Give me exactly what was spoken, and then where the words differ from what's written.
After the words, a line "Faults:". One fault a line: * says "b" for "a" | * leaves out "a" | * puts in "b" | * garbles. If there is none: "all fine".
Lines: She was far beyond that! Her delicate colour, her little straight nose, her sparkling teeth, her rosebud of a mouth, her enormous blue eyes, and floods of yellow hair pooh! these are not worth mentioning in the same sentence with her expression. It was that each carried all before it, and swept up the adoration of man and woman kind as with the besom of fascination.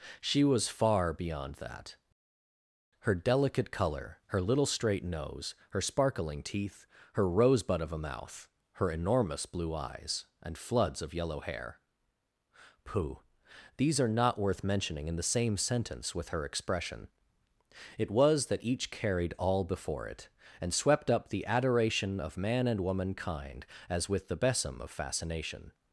She was far beyond that! Her delicate colour, her little straight nose, her sparkling teeth, her rosebud of a mouth, her enormous blue eyes, and floods of yellow hair pooh! these are not worth mentioning in the same sentence with her expression. It was that each carried all before it, and swept up the adoration of man and woman kind as with the besom of fascination.
Faults:
all fine